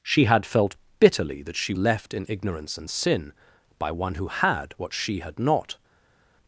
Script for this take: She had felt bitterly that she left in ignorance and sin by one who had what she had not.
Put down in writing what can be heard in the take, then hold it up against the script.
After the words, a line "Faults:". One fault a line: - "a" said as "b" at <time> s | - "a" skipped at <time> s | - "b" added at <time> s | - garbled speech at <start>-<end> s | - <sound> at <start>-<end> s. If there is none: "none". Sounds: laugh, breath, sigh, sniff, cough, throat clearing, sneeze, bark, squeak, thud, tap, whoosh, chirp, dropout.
She had felt bitterly that she left in ignorance and sin by one who had what she had not.
Faults:
none